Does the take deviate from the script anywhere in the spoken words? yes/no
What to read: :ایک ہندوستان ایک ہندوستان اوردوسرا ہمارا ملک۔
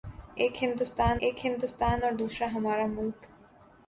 no